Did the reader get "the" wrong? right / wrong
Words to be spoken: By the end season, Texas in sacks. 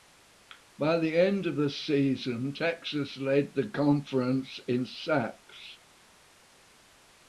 right